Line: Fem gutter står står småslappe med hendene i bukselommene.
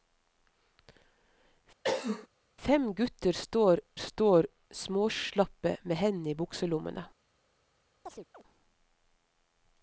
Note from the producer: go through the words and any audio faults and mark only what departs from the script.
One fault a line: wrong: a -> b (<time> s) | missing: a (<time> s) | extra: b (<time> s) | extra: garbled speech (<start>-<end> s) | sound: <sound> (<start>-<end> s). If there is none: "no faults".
sound: cough (1.8-2.3 s)
sound: chirp (8.1-8.4 s)